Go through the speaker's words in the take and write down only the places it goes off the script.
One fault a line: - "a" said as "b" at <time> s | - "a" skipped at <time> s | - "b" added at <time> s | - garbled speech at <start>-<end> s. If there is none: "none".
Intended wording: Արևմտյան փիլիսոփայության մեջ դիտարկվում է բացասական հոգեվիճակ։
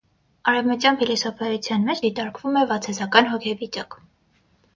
none